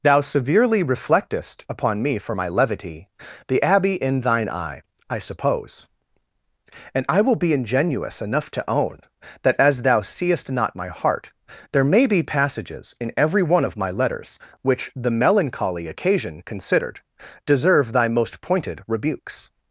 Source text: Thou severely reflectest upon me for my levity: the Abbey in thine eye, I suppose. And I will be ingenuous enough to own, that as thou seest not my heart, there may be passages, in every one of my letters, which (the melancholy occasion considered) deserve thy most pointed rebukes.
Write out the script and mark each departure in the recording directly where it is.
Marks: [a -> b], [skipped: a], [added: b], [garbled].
Thou severely reflectest upon me for my levity: the Abbey in thine eye, I suppose. And I will be ingenuous enough to own, that as thou seest not my heart, there may be passages, in every one of my letters, which (the melancholy occasion considered) deserve thy most pointed rebukes.